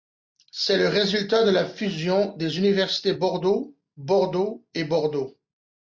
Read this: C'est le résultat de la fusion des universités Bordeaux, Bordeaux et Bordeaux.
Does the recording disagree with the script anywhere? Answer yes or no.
no